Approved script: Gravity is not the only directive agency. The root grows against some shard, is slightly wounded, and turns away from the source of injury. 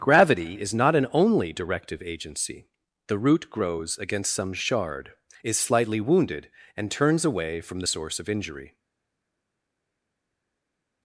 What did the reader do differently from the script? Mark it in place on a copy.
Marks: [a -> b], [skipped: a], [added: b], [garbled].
Gravity is not [the -> an] only directive agency. The root grows against some shard, is slightly wounded, and turns away from the source of injury.